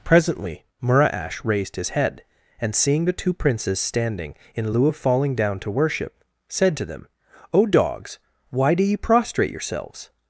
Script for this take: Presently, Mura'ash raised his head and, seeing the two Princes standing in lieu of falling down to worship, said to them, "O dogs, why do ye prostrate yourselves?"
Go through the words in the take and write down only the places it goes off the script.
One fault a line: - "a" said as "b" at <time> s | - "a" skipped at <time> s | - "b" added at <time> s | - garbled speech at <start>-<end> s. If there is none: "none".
none